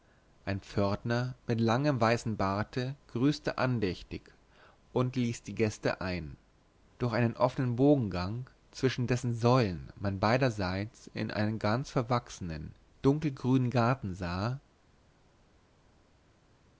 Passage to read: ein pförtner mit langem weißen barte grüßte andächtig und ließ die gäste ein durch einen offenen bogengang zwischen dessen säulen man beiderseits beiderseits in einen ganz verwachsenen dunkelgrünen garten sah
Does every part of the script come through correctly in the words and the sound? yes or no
no